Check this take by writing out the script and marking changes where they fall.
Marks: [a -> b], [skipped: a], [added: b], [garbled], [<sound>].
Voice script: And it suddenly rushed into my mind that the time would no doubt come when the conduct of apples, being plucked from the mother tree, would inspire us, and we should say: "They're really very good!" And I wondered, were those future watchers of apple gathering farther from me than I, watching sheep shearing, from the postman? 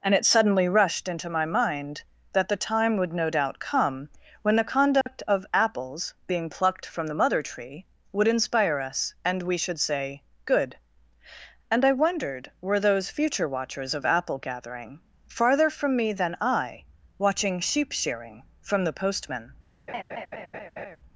And it suddenly rushed into my mind that the time would no doubt come when the conduct [dropout] of apples, being plucked from the mother tree, would inspire us, and we should say: [skipped: "They're really very] good!" And I wondered, were those future watchers of apple gathering farther from me than I, watching sheep shearing, from the postman? [laugh]